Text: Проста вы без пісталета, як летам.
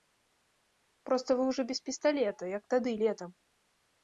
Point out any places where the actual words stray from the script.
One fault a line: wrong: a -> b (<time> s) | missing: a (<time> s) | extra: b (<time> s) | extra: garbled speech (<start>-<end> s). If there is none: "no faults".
extra: ўжо (1.5 s)
extra: тады (2.8 s)